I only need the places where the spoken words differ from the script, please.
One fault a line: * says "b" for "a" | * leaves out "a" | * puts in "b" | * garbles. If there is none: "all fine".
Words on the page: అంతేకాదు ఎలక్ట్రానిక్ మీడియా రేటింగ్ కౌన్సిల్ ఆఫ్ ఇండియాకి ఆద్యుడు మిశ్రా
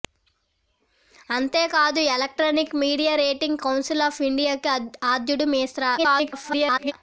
* garbles